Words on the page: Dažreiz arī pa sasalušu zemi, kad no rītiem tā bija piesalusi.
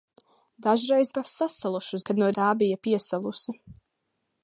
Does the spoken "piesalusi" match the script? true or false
true